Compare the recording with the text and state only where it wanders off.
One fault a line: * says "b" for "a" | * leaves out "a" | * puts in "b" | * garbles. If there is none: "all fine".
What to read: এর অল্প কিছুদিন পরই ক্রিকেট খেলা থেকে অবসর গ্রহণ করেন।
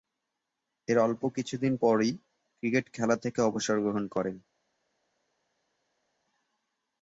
all fine